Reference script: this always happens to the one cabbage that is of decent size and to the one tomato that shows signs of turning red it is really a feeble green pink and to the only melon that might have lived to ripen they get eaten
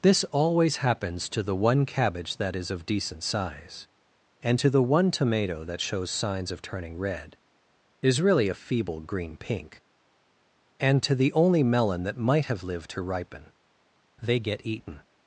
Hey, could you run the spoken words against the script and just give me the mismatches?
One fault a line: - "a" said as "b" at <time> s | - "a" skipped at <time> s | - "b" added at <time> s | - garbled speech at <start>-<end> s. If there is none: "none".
- "it" skipped at 7.4 s